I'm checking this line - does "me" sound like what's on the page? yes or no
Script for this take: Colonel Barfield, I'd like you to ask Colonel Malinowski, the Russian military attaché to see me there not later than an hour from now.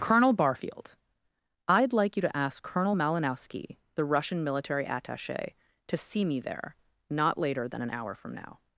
yes